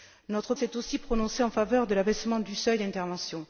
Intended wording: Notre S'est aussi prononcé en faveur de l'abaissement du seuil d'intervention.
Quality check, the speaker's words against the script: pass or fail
pass